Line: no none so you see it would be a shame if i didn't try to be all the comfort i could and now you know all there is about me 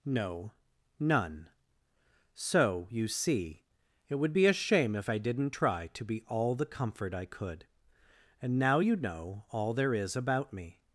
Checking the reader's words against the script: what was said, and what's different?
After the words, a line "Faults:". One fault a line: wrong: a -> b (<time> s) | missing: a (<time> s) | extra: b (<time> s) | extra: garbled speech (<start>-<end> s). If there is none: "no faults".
no none so you see it would be a shame if i didn't try to be all the comfort i could and now you know all there is about me
Faults:
no faults